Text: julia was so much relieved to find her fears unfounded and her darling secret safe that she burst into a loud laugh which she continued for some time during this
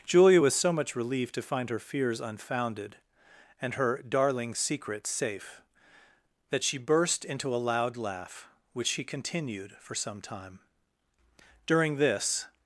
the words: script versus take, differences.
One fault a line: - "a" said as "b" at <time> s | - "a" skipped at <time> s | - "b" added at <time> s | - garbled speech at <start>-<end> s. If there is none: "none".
none